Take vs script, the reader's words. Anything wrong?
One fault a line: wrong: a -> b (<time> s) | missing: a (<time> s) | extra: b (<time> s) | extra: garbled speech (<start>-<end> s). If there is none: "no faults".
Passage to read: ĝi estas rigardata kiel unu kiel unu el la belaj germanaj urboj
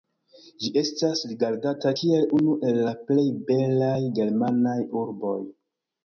missing: kiel unu (2.5 s)
extra: plej (3.1 s)